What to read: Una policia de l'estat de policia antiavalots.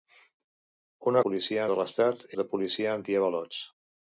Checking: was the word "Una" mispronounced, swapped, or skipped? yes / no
no